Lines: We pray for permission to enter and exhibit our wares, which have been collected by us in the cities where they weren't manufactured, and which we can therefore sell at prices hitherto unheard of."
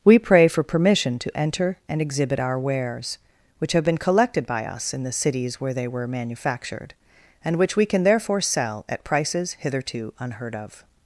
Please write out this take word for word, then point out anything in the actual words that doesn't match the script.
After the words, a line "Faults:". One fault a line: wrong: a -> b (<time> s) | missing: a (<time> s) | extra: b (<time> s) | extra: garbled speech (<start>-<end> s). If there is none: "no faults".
We pray for permission to enter and exhibit our wares, which have been collected by us in the cities where they were manufactured, and which we can therefore sell at prices hitherto unheard of."
Faults:
wrong: weren't -> were (5.9 s)